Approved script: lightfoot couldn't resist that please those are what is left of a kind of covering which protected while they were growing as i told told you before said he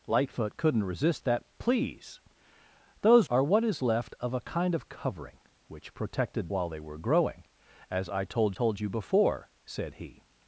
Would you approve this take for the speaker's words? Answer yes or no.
yes